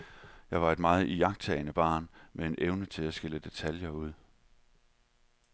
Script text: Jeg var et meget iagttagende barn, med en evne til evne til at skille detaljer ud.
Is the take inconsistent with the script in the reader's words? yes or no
yes